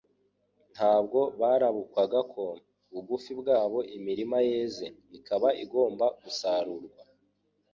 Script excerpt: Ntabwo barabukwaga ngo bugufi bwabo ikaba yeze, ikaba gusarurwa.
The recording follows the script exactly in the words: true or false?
false